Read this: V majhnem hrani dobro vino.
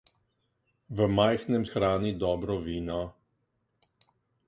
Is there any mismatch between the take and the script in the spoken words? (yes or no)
no